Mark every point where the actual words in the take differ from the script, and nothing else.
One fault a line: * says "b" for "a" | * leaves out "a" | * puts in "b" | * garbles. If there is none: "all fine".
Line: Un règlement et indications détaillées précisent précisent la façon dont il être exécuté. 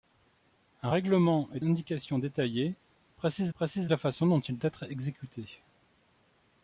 all fine